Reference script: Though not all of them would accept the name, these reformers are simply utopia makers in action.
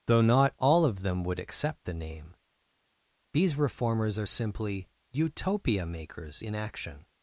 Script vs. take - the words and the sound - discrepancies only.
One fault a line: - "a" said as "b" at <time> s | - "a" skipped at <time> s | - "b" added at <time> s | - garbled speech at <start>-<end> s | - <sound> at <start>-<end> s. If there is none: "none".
none